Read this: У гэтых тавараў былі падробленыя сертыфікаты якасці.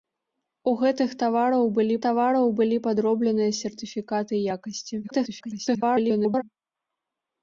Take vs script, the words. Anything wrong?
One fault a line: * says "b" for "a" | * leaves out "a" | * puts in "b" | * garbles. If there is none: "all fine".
* puts in "тавараў былі"
* garbles